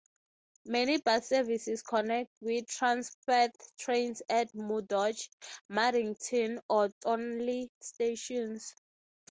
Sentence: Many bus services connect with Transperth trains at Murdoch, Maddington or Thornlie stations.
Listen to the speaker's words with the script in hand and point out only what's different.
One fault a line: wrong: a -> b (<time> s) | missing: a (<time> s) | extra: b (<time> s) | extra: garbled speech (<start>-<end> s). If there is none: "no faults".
no faults